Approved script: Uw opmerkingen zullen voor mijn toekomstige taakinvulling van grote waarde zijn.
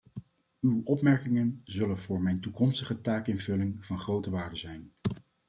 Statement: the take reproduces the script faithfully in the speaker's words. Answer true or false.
true